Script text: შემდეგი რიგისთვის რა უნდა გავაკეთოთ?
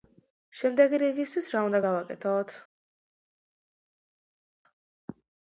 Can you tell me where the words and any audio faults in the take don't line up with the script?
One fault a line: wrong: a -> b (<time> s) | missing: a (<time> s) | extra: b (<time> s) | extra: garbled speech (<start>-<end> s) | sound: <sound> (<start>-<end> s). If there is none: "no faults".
no faults